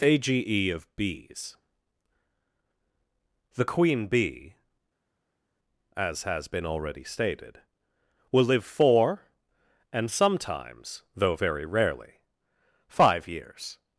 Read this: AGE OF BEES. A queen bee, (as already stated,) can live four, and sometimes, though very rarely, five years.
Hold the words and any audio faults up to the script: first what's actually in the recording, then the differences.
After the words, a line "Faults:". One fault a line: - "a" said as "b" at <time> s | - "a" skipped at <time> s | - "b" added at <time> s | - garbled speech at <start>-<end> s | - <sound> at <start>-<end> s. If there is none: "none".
AGE OF BEES. The queen bee, (as has been already stated,) will live four, and sometimes, though very rarely, five years.
Faults:
- "A" said as "The" at 3.5 s
- "has been" added at 6.2 s
- "can" said as "will" at 8.3 s